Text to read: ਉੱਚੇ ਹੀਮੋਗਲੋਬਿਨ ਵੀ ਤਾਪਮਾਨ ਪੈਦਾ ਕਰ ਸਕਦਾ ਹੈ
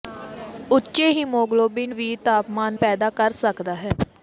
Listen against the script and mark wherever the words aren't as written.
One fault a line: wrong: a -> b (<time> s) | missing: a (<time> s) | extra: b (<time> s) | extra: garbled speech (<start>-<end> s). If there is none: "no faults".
no faults